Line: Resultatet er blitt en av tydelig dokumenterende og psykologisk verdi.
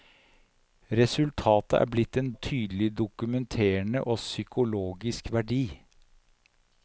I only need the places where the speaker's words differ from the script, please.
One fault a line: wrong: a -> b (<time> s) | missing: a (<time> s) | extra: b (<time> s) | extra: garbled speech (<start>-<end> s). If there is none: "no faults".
no faults